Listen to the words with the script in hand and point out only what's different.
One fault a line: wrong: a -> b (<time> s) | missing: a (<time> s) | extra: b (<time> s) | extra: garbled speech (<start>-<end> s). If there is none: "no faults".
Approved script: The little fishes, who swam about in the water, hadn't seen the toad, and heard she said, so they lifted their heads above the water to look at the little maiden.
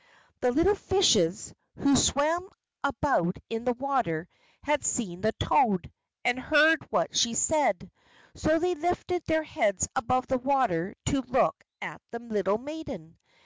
wrong: hadn't -> had (4.6 s)
extra: what (6.9 s)